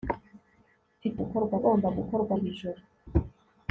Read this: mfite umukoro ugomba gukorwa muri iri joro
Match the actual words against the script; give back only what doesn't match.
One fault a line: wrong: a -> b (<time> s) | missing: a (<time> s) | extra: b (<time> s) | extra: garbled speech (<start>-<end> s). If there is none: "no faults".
wrong: umukoro -> gukorwa (1.2 s)
missing: muri (2.3 s)